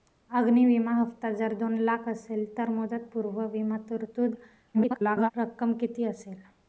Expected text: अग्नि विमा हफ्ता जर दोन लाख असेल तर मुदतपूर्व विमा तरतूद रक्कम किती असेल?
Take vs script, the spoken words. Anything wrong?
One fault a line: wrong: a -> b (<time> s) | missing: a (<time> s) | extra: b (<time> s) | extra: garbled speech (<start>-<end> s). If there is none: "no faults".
extra: garbled speech (4.7-5.3 s)